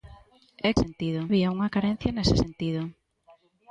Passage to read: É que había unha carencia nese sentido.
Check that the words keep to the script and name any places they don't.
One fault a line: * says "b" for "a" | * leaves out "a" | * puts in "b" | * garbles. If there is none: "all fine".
* says "sentido" for "que"